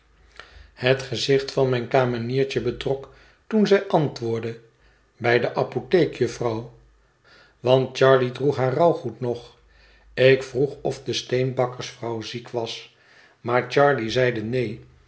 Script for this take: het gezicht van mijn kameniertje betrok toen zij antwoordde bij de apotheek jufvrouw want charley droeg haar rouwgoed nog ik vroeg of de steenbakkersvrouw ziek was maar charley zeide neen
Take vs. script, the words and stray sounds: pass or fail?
pass